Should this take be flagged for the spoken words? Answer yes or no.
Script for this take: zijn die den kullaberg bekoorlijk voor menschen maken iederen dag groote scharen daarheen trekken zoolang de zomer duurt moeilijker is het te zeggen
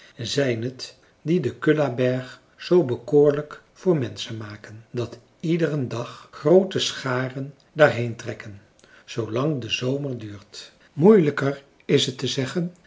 yes